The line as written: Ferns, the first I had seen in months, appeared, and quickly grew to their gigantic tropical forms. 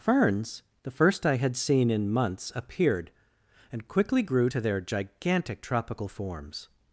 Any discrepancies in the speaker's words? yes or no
no